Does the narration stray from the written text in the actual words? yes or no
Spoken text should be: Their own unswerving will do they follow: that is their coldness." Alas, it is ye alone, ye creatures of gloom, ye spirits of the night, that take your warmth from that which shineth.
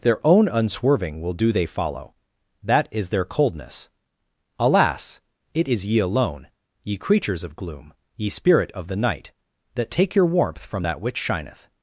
yes